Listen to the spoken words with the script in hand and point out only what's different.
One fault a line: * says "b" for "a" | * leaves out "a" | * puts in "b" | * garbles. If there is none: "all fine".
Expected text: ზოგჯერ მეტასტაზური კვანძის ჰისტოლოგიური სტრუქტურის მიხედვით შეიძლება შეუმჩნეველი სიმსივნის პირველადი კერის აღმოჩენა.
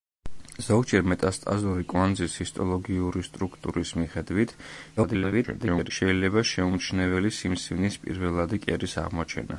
* garbles